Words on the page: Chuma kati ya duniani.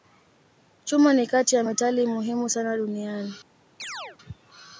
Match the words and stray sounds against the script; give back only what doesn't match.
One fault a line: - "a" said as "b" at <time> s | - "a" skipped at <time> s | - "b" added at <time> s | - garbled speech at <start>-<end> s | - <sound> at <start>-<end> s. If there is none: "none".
- "ni" added at 1.1 s
- "metali muhimu sana" added at 1.6 s
- chirp at 3.8-4.2 s